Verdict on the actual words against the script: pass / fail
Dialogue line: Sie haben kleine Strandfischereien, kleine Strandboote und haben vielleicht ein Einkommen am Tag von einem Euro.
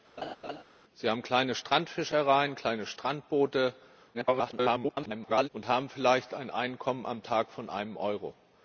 fail